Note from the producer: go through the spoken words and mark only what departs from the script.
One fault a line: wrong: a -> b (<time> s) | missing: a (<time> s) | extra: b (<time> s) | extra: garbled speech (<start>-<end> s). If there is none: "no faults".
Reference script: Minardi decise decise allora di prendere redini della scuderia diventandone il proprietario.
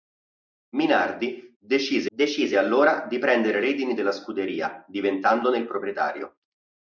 no faults